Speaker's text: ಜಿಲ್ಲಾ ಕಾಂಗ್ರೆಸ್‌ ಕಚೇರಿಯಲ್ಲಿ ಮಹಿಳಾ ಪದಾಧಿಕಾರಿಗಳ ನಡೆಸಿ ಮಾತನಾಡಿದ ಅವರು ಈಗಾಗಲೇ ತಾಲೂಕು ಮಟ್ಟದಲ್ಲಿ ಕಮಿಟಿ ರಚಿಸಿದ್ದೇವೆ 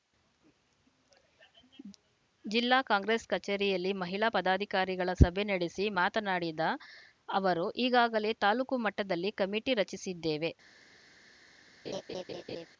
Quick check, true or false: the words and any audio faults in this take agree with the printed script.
false